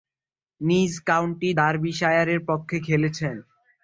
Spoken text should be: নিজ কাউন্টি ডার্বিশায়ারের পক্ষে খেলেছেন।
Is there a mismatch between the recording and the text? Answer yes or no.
no